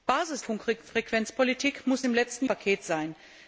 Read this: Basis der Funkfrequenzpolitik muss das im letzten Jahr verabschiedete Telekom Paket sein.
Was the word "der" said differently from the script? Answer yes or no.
yes